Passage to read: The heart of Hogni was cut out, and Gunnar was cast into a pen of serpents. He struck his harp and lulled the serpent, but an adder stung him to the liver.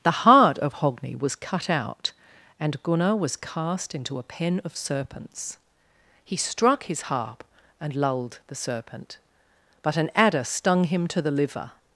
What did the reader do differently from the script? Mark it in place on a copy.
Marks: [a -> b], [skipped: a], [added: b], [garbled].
The heart of Hogni was cut out, and Gunnar was cast into a pen of serpents. He struck his harp and lulled the serpent, but an adder stung him to the liver.